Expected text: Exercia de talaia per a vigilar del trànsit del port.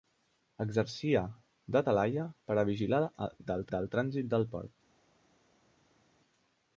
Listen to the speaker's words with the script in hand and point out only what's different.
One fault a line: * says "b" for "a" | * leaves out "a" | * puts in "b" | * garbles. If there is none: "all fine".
* puts in "del"